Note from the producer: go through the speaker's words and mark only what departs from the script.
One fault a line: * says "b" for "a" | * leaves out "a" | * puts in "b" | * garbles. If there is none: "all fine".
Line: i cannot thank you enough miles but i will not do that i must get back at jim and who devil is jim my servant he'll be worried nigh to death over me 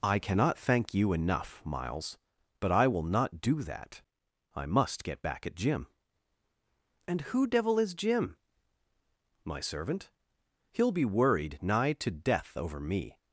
all fine